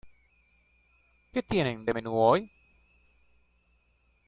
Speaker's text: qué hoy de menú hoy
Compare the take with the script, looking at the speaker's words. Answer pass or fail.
fail